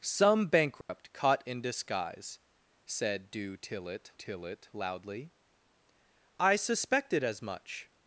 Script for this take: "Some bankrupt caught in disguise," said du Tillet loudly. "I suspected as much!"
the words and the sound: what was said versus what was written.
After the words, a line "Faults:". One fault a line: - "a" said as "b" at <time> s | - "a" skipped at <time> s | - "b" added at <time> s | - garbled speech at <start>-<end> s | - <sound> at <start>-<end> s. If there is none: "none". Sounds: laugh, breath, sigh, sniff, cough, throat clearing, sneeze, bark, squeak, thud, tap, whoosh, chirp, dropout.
"Some bankrupt caught in disguise," said du Tillet Tillet loudly. "I suspected as much!"
Faults:
- dropout at 0.8-0.9 s
- "Tillet" added at 4.1 s